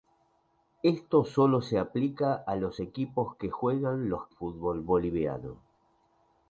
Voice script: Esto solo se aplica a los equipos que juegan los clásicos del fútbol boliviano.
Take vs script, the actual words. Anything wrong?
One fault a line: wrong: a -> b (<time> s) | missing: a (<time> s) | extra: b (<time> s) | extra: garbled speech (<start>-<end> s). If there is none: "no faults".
missing: clásicos del (4.3 s)